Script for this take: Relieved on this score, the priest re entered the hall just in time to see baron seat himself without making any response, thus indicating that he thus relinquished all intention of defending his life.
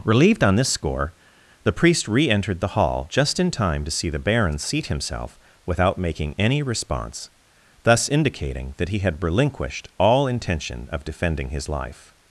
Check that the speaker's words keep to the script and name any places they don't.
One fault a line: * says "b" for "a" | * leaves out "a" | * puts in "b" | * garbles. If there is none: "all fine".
* puts in "the"
* says "had" for "thus"